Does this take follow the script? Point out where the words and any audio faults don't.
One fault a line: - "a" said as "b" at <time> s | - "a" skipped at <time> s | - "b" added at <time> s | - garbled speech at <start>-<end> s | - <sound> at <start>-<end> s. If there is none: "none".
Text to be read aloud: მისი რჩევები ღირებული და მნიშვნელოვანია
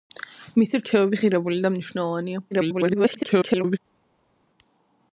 - garbled speech at 2.5-3.8 s